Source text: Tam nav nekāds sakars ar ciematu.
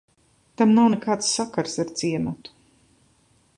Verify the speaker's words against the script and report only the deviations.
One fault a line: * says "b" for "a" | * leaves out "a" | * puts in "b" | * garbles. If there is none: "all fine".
all fine